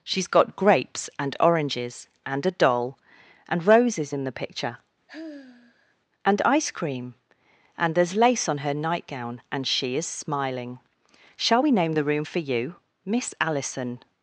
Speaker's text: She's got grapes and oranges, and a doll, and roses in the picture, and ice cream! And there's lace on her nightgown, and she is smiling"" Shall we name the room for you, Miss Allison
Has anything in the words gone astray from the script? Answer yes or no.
no